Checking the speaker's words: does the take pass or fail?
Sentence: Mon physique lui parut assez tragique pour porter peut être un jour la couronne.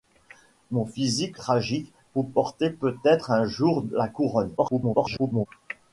fail